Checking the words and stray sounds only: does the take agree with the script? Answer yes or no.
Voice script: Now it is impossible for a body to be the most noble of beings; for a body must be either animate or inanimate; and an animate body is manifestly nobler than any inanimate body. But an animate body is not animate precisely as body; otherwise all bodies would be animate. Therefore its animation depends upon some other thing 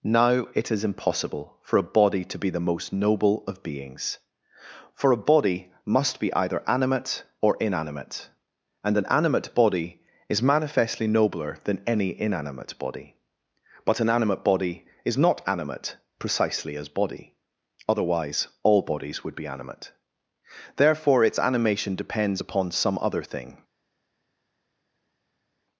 yes